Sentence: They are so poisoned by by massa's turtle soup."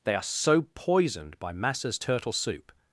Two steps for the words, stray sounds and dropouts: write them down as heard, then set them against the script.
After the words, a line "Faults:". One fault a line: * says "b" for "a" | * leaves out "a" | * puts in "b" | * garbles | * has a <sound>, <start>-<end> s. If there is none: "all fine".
They are so poisoned by massa's turtle soup."
Faults:
* leaves out "by"